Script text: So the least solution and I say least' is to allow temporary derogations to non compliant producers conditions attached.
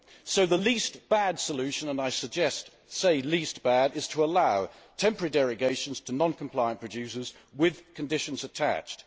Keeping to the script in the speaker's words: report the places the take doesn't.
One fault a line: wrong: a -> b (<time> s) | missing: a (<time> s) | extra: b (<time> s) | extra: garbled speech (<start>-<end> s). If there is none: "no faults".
extra: bad (1.1 s)
extra: bad (3.6 s)
extra: with (7.5 s)